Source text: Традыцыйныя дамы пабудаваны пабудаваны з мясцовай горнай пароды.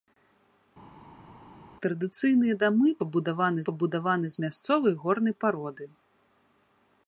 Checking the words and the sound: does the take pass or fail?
pass